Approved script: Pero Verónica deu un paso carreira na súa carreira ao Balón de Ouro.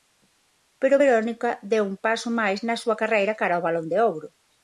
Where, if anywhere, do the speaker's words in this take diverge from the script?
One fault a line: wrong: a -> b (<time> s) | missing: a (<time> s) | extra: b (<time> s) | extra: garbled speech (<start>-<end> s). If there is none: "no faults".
wrong: carreira -> máis (2.4 s)
extra: cara (3.4 s)